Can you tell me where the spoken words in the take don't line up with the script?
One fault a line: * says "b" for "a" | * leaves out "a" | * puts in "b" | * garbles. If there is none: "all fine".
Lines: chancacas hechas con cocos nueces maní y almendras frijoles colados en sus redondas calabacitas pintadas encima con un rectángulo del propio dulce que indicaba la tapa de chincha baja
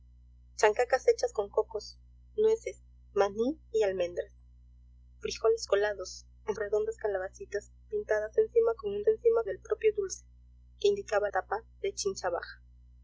* leaves out "sus"
* says "encima" for "rectángulo"
* leaves out "la"